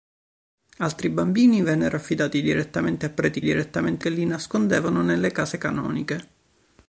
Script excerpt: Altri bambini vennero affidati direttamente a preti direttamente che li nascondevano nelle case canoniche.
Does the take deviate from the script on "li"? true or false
false